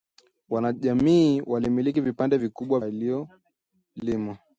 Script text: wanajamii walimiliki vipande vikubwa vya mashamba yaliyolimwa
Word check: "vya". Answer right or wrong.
wrong